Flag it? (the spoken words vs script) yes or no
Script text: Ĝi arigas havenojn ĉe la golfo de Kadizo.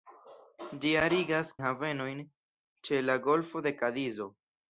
no